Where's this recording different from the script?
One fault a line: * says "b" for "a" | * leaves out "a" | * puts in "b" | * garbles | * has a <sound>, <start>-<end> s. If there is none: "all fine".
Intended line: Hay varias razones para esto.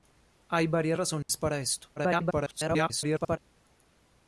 * has a dropout, 1.2-1.3 s
* garbles